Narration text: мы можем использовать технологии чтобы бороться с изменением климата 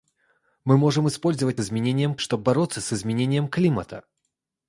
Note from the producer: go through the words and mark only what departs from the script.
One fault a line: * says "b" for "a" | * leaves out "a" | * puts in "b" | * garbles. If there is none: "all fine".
* says "изменением" for "технологии"